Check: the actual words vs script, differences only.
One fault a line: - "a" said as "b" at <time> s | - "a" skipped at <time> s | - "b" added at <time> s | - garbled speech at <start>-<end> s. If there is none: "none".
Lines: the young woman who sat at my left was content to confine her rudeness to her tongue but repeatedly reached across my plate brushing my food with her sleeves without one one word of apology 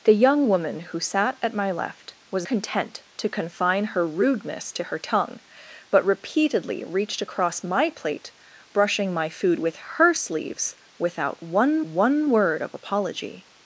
none